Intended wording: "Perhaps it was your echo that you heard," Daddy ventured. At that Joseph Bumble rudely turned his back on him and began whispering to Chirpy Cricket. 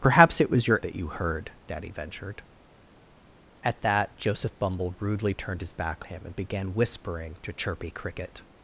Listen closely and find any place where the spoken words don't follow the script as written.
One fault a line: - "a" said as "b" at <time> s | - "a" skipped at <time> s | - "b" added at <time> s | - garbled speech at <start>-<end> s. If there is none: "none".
- "echo" skipped at 0.8 s
- "on" skipped at 6.0 s